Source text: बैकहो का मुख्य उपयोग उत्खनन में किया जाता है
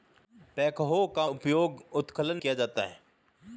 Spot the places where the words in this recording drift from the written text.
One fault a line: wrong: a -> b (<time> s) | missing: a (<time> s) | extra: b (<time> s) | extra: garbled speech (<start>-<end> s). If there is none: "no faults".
missing: मुख्य (1.3 s)
missing: में (2.4 s)